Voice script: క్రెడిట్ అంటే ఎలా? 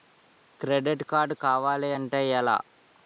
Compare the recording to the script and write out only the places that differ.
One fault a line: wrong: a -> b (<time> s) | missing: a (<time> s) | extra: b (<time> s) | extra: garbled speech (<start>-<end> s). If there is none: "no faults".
extra: కార్డ్ కావాలి (1.0 s)